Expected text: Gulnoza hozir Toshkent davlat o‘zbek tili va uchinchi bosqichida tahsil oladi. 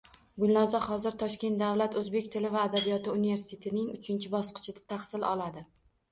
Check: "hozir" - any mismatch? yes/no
no